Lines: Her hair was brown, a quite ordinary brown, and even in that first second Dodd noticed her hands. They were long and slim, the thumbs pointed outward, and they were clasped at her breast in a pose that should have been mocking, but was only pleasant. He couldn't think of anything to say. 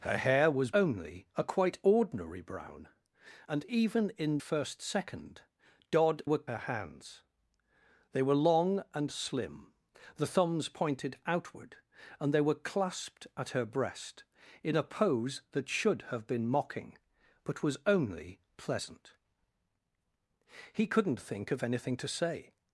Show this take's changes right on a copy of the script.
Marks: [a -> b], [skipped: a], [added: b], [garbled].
Her hair was [brown, -> only] a quite ordinary brown, and even in [skipped: that] first second Dodd [noticed -> were] her hands. They were long and slim, the thumbs pointed outward, and they were clasped at her breast in a pose that should have been mocking, but was only pleasant. He couldn't think of anything to say.